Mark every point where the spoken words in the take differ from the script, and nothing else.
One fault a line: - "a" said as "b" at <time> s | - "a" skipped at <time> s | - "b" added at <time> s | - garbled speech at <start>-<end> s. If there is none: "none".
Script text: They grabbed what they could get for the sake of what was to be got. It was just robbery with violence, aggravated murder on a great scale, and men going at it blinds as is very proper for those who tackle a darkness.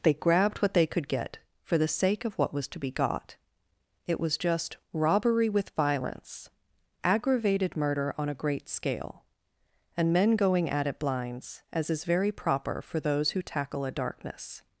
none